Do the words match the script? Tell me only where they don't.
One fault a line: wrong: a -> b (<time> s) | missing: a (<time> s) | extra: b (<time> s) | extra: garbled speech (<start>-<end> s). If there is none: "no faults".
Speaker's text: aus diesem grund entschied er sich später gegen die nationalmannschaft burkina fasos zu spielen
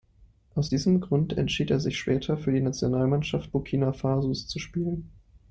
wrong: gegen -> für (2.4 s)